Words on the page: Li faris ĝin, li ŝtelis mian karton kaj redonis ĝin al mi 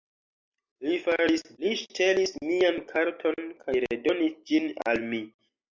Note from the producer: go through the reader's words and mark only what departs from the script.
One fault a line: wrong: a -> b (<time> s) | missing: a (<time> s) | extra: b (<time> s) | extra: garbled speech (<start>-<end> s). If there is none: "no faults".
missing: ĝin (1.4 s)